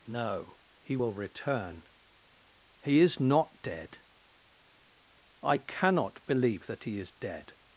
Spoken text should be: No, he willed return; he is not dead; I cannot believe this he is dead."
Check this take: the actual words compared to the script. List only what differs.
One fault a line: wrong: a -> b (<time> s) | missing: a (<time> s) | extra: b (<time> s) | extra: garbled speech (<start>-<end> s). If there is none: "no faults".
wrong: willed -> will (0.9 s)
wrong: this -> that (6.7 s)